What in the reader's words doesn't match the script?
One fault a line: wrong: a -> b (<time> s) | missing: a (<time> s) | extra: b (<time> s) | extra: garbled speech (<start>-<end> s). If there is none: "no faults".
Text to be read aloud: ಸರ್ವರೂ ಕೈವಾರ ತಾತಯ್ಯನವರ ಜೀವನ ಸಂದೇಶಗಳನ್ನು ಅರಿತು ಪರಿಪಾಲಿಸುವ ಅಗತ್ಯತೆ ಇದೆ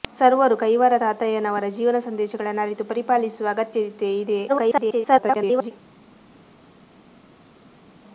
extra: garbled speech (4.5-5.7 s)